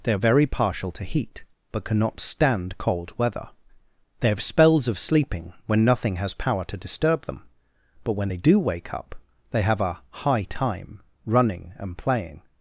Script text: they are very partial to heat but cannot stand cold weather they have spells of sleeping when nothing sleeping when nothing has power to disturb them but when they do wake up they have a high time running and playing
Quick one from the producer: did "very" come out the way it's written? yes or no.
yes